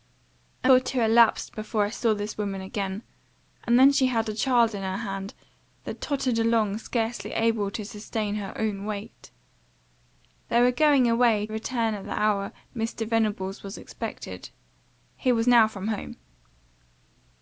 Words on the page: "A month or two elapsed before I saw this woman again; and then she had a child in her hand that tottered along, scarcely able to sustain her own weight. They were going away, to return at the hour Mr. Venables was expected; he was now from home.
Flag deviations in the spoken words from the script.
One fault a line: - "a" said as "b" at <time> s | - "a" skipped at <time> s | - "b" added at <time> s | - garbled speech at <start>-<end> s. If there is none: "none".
- "month" skipped at 0.7 s
- "to" skipped at 11.5 s